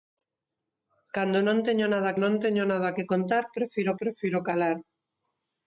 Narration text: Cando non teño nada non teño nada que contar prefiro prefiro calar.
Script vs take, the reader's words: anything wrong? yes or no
no